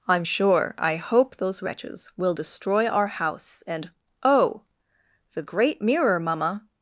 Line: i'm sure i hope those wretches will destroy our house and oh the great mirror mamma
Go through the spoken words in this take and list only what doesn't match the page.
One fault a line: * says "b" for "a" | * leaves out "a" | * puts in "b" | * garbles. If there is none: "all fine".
all fine